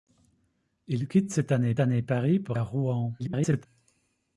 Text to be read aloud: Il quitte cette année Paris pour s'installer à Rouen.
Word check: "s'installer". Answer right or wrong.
wrong